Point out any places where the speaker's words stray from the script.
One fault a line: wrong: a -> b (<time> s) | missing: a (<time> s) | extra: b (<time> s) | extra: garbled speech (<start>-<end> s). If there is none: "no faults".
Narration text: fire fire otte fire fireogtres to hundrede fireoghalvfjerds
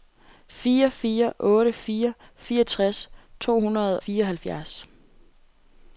no faults